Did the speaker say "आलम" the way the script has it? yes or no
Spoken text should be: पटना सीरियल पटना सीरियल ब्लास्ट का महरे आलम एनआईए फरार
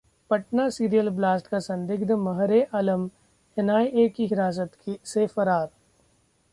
yes